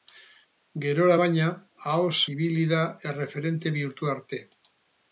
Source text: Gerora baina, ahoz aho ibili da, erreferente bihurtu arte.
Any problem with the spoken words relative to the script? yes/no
yes